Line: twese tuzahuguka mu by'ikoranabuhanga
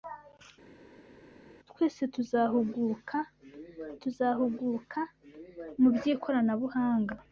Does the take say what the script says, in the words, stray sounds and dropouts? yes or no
no